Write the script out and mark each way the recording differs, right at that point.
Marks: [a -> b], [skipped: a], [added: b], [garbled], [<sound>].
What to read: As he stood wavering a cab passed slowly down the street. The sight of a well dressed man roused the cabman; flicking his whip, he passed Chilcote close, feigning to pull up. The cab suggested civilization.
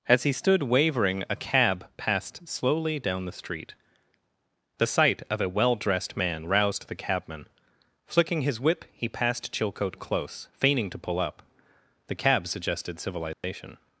As he stood wavering a cab passed slowly down the street. The sight of a well dressed man roused the cabman; flicking his whip, he passed Chilcote close, feigning to pull up. The cab suggested civilization. [dropout]